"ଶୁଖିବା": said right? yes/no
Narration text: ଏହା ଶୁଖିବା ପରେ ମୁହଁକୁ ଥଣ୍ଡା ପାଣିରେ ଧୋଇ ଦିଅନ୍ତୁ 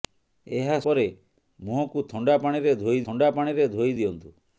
no